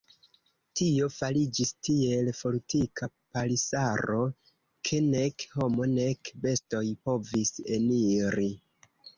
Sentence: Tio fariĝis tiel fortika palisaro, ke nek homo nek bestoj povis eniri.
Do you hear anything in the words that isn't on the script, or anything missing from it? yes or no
no